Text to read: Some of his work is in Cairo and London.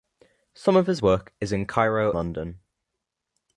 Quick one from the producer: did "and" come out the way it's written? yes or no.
no